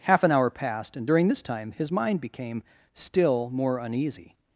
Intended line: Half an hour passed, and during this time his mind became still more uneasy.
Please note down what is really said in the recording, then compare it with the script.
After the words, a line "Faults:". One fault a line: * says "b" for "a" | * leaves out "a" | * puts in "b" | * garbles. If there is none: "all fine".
Half an hour passed, and during this time his mind became still more uneasy.
Faults:
all fine